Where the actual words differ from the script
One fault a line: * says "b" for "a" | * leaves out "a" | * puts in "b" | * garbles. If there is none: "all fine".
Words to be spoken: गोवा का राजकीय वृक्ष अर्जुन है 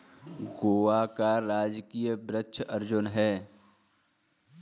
all fine